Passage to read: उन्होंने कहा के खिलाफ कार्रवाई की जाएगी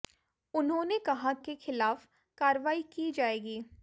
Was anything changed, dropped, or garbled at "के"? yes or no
no